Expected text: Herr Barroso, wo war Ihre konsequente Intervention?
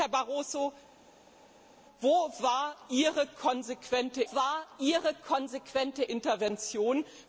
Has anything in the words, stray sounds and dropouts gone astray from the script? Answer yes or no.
yes